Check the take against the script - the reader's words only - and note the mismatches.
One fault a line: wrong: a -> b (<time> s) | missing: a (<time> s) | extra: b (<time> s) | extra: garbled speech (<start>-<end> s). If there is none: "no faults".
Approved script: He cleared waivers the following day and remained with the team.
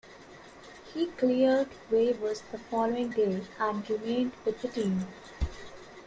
no faults